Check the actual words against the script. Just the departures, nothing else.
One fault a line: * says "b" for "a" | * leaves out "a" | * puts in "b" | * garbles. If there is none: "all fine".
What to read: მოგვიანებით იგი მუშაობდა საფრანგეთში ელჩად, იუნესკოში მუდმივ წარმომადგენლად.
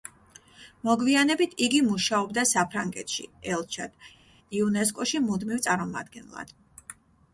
all fine